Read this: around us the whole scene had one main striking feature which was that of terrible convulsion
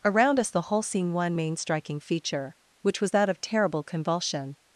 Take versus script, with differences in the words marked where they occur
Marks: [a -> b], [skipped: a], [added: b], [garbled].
around us the whole scene [skipped: had] one main striking feature which was that of terrible convulsion